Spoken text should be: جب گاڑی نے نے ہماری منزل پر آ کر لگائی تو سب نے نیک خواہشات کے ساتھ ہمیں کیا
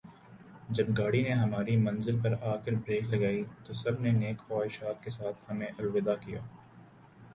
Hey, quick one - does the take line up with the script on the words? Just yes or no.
no